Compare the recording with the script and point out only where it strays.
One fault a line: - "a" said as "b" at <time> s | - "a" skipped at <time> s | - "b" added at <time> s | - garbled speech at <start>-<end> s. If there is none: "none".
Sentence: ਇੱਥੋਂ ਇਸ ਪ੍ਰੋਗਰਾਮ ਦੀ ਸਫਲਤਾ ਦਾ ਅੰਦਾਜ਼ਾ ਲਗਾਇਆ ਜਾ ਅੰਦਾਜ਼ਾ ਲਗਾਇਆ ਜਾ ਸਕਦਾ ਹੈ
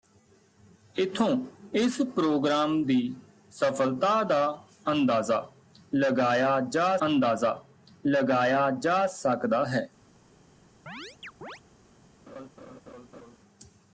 none